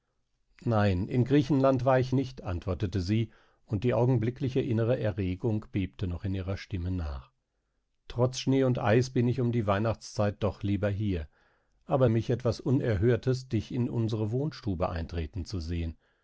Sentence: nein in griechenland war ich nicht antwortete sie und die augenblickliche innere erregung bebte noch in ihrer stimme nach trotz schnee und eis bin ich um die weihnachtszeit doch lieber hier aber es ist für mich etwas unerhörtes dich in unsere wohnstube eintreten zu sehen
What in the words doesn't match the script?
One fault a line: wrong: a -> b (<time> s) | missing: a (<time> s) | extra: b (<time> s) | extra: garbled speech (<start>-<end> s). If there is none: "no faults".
missing: es ist für (12.0 s)